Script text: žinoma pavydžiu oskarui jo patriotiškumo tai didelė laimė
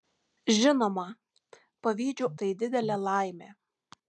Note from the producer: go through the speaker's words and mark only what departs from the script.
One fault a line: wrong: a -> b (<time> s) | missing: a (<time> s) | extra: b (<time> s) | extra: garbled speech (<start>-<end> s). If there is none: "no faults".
missing: oskarui jo patriotiškumo (2.3 s)